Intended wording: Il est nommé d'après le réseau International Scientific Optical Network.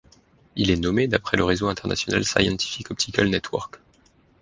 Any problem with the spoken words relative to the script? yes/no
no